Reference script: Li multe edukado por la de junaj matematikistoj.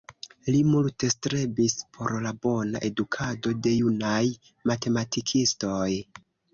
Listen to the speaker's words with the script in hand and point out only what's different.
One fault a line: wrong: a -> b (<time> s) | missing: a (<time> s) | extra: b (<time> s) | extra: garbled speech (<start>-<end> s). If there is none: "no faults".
wrong: edukado -> strebis (1.1 s)
extra: bona edukado (2.5 s)